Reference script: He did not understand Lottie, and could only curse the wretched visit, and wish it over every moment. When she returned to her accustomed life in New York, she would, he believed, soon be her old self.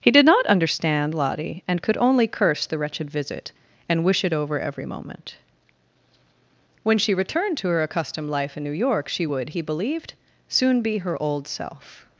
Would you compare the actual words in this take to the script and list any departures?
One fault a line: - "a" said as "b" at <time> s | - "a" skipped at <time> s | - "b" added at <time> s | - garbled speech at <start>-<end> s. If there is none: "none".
none